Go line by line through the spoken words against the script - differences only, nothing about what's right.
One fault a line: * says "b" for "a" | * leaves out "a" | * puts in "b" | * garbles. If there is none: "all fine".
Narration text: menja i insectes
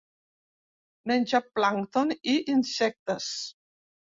* puts in "plàncton"